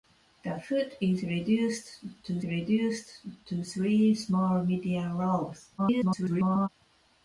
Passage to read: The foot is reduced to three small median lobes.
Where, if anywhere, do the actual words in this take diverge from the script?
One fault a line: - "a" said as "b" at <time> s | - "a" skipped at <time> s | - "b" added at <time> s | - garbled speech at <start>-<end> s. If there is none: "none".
- "reduced to" added at 2.4 s
- garbled speech at 5.8-6.7 s